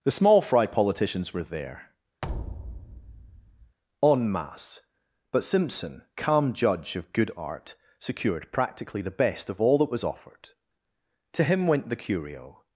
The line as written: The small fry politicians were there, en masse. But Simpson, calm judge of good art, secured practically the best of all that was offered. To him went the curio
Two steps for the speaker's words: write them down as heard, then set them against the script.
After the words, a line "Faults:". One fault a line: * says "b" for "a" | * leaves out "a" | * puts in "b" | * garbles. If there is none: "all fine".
The small fry politicians were there, en masse. But Simpson, calm judge of good art, secured practically the best of all that was offered. To him went the curio
Faults:
all fine